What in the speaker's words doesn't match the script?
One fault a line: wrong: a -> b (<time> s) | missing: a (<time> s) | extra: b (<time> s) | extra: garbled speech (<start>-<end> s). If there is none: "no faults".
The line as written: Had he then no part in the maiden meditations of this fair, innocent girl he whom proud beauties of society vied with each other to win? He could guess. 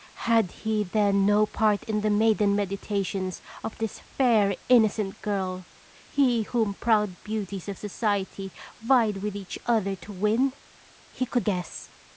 no faults